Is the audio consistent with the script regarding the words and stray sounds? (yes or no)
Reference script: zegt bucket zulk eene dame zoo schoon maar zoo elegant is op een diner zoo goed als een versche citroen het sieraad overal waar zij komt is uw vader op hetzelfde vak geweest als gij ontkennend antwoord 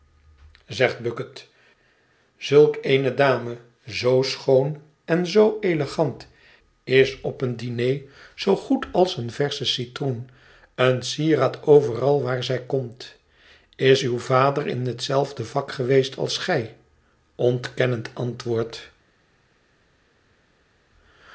no